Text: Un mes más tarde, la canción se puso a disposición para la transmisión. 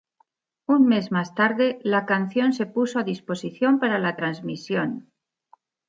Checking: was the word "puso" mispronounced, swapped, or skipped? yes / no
no